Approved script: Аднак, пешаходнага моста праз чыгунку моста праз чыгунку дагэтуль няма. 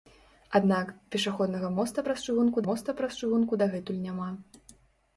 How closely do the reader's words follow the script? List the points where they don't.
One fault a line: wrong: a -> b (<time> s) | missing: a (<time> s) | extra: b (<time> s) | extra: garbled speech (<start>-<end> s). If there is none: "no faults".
no faults